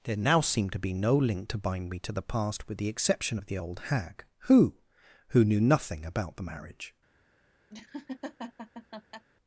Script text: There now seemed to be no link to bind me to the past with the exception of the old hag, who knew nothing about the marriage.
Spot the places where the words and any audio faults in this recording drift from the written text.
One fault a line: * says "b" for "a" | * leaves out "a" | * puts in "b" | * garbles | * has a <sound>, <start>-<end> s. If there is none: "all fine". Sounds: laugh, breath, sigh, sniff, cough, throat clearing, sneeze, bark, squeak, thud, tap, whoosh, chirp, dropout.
* puts in "who"
* has a laugh, 7.7-9.2 s